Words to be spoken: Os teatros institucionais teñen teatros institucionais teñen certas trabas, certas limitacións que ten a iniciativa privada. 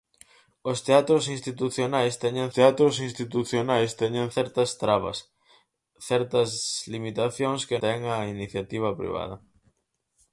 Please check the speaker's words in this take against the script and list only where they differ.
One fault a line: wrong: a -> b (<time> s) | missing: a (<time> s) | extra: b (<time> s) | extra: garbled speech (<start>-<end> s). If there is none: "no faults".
no faults